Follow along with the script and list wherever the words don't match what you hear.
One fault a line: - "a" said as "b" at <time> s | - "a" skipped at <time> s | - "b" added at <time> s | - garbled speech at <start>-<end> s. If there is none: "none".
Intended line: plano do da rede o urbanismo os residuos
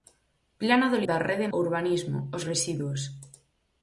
none